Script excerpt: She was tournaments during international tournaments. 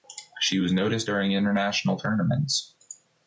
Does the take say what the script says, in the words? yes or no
no